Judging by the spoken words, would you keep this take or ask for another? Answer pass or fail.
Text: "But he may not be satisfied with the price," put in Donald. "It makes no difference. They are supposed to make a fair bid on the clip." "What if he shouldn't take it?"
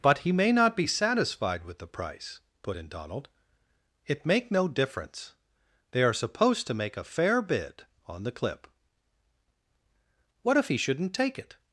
fail